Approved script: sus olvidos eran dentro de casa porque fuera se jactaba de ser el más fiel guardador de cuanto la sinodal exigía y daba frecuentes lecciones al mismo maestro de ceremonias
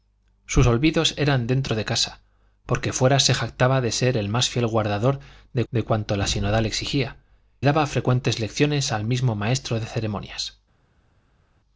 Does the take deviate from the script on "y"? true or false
true